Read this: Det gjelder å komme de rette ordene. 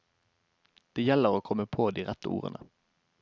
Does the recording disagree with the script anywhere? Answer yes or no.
yes